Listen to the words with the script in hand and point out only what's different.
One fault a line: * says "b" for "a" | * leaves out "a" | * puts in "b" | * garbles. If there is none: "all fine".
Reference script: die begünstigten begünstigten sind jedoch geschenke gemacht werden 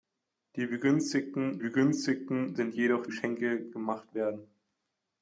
all fine